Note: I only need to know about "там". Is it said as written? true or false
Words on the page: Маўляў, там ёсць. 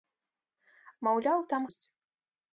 true